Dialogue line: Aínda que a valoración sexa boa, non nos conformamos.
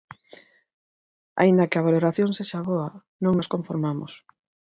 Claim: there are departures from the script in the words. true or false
false